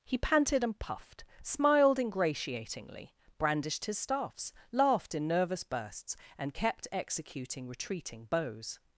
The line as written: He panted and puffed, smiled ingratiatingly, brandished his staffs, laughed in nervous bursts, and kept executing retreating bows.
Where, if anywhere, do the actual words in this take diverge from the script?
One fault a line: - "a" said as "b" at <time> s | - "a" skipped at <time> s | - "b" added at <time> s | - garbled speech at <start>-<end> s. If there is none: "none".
none